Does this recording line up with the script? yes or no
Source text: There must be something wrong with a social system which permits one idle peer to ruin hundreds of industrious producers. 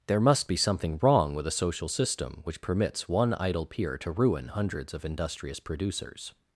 yes